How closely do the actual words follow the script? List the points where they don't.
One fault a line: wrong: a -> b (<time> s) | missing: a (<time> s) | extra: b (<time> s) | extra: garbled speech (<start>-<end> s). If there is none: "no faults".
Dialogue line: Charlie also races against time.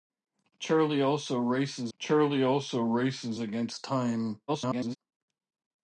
extra: charlie also races (2.0 s)
extra: garbled speech (4.5-5.0 s)